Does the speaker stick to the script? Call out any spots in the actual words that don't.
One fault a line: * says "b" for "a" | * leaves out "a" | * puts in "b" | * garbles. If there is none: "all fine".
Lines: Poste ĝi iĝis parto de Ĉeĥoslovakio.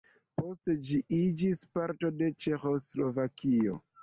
all fine